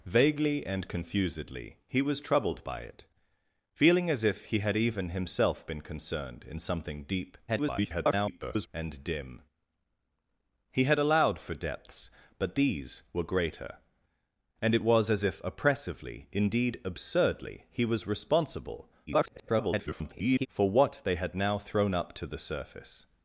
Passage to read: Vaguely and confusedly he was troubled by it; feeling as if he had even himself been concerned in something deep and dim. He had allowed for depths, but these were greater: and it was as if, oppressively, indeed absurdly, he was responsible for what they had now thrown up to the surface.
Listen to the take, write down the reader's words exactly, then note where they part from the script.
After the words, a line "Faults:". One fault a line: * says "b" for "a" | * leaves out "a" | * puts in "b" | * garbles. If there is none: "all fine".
Vaguely and confusedly he was troubled by it; feeling as if he had even himself been concerned in something deep [garbled] and dim. He had allowed for depths, but these were greater: and it was as if, oppressively, indeed absurdly, he was responsible [garbled] for what they had now thrown up to the surface.
Faults:
* garbles
* garbles